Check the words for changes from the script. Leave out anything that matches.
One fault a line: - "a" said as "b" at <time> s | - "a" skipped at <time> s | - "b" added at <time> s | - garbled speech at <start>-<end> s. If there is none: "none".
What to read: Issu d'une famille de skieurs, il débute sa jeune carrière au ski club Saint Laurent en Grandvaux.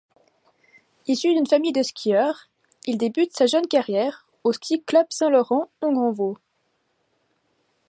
none